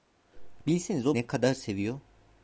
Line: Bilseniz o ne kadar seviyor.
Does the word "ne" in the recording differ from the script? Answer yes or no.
no